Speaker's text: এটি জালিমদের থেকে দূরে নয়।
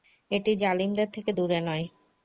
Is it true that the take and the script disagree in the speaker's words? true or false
false